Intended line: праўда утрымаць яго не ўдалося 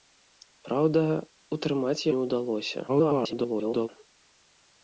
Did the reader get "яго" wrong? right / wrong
wrong